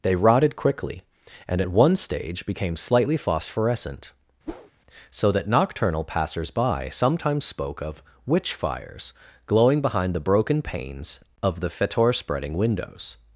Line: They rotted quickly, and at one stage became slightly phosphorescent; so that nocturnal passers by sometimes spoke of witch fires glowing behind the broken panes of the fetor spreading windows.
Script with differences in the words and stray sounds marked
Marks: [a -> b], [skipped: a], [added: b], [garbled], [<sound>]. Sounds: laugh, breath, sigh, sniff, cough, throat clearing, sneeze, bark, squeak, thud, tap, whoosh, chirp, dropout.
They rotted quickly, and at one stage became slightly phosphorescent; [whoosh] so that nocturnal passers by sometimes spoke of witch fires glowing behind the broken panes of the fetor spreading windows.